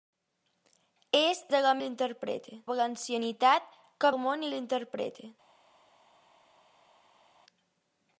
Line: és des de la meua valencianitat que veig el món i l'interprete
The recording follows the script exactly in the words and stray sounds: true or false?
false